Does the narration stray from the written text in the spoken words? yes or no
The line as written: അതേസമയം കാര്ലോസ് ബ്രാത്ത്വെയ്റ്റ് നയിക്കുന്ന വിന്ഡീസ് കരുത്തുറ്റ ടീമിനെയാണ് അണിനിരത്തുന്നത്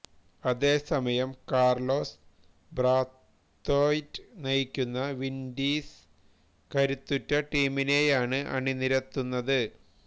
no